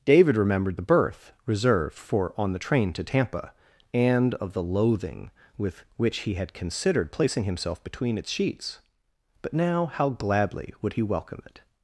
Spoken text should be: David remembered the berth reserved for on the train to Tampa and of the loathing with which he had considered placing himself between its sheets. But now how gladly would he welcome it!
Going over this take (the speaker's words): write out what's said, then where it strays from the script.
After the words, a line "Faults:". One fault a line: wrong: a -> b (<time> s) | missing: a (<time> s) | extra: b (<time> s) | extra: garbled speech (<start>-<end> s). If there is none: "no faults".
David remembered the berth reserved for on the train to Tampa and of the loathing with which he had considered placing himself between its sheets. But now how gladly would he welcome it!
Faults:
no faults